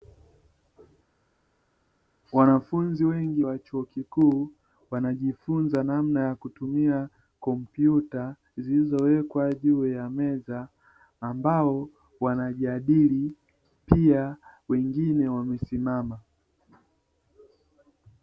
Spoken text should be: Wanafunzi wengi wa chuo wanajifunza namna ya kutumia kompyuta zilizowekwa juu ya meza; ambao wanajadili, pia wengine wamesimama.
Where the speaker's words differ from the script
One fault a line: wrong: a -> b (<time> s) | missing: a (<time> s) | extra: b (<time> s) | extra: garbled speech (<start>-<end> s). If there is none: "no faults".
extra: kikuu (3.8 s)